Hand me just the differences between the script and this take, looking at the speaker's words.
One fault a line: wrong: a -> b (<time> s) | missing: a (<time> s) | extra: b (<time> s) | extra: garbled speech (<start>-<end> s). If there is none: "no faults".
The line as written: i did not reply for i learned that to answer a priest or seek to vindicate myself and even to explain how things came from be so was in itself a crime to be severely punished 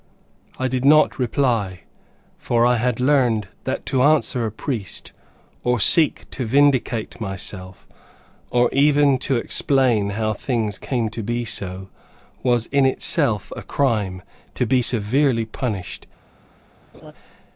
extra: had (2.8 s)
wrong: and -> or (8.5 s)
wrong: from -> to (11.1 s)